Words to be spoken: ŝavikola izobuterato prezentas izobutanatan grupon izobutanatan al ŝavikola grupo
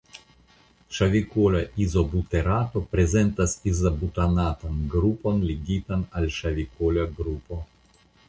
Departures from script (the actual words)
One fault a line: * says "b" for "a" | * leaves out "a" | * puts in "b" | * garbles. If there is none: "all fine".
* says "ligitan" for "izobutanatan"